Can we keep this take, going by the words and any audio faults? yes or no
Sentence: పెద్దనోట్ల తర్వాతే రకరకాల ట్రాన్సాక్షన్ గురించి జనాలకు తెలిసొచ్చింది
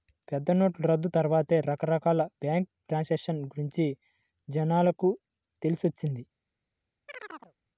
no